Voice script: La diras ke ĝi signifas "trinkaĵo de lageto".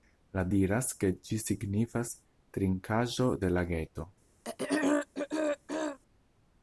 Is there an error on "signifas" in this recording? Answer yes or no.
no